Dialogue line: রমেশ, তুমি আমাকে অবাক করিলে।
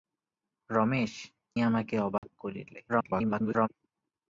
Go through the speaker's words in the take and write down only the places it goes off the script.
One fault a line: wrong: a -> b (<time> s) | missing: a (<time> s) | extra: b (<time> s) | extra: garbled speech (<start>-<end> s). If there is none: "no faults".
missing: তুমি (1.1 s)
extra: garbled speech (2.9-3.7 s)